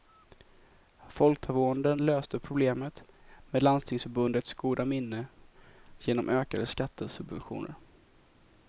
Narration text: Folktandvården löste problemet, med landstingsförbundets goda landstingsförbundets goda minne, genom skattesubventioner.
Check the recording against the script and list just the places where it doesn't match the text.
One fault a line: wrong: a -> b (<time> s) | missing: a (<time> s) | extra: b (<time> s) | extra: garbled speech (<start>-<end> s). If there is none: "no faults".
missing: landstingsförbundets goda (4.8 s)
extra: ökade (6.3 s)